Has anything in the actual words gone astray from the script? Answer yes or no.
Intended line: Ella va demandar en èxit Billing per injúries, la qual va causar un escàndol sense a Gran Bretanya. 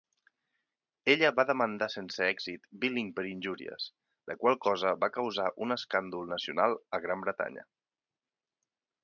yes